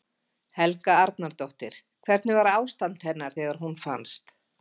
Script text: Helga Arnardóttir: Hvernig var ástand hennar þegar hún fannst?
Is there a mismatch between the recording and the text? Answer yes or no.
no